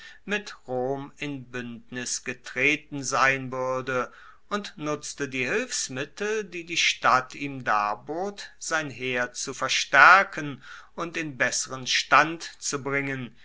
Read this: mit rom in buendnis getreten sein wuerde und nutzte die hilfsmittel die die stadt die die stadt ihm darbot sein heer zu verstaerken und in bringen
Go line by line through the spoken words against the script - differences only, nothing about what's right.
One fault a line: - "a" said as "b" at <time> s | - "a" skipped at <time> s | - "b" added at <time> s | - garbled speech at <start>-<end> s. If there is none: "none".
- "die die stadt" skipped at 7.3 s
- "besseren stand zu" added at 11.4 s